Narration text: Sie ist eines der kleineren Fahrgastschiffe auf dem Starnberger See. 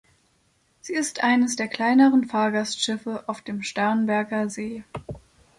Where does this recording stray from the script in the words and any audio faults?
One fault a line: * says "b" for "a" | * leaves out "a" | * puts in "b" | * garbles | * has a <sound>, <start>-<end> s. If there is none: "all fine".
all fine